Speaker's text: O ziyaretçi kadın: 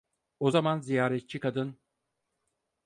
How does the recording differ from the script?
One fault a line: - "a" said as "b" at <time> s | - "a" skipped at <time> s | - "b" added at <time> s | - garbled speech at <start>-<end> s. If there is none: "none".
- "zaman" added at 0.5 s